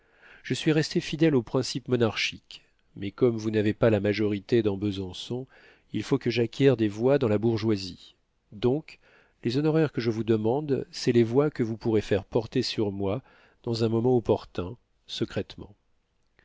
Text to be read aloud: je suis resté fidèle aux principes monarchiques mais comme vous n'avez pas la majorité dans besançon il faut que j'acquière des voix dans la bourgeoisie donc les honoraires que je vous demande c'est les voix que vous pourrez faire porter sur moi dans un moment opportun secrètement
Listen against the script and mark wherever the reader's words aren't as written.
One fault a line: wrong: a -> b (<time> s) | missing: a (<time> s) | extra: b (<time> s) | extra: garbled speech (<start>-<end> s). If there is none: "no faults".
no faults